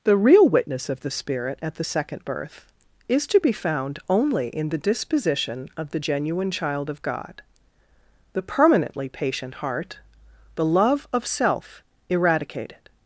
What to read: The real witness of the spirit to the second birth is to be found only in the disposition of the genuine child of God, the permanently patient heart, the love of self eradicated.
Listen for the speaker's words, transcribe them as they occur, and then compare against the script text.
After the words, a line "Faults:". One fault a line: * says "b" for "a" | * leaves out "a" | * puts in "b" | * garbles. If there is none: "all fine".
The real witness of the spirit at the second birth is to be found only in the disposition of the genuine child of God, the permanently patient heart, the love of self eradicated.
Faults:
* says "at" for "to"